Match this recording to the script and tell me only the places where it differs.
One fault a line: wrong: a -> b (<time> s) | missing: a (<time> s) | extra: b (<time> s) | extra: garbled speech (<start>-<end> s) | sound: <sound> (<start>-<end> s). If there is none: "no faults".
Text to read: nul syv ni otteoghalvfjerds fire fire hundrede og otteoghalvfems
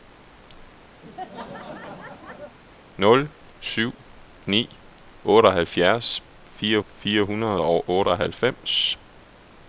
sound: laugh (1.0-2.6 s)